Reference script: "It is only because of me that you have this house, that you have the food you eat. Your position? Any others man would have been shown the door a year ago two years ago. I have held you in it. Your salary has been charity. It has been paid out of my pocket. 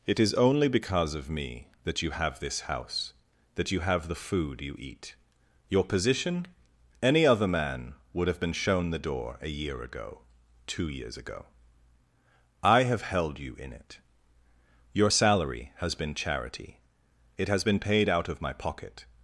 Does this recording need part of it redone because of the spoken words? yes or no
yes